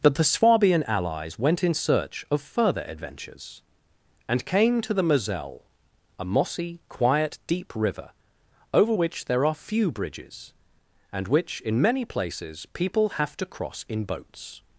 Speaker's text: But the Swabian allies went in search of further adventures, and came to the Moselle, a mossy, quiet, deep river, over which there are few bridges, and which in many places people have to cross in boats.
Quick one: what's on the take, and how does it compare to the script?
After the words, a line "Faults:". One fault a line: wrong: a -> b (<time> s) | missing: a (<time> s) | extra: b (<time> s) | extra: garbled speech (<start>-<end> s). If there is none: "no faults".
But the Swabian allies went in search of further adventures, and came to the Moselle, a mossy, quiet, deep river, over which there are few bridges, and which in many places people have to cross in boats.
Faults:
no faults